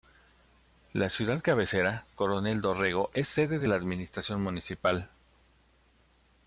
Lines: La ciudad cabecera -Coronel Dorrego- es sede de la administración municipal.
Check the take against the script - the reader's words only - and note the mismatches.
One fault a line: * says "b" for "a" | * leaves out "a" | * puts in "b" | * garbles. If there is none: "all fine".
all fine